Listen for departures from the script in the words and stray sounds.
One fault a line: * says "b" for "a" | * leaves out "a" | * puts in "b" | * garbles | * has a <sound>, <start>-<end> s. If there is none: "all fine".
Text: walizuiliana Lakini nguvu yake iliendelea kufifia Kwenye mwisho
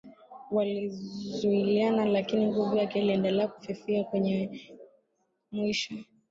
all fine